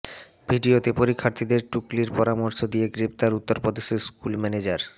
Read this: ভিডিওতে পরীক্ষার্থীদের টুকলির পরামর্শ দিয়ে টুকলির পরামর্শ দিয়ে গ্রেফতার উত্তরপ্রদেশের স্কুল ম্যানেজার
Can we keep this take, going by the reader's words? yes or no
no